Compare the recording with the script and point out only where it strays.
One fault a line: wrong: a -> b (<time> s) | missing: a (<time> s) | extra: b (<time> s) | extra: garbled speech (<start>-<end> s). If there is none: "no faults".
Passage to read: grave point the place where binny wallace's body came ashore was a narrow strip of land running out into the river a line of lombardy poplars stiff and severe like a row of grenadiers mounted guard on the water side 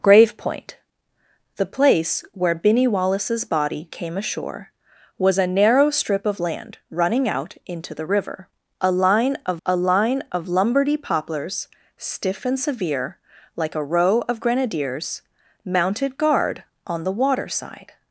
extra: a line of (9.6 s)